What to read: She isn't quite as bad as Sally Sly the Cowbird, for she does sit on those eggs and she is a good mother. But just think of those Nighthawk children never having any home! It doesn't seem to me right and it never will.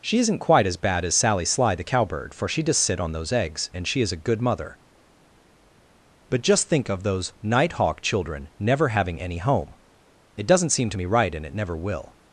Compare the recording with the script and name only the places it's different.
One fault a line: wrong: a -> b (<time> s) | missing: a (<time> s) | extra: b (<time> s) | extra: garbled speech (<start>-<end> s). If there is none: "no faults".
no faults